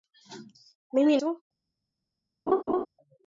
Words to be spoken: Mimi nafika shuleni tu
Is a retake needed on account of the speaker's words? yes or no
yes